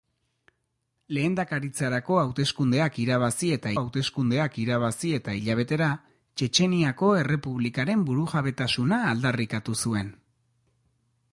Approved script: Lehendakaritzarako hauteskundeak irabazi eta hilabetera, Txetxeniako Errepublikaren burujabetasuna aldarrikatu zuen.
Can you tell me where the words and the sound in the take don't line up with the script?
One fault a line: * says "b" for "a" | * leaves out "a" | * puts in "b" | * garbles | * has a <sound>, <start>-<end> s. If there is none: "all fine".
* puts in "hauteskundeak irabazi eta"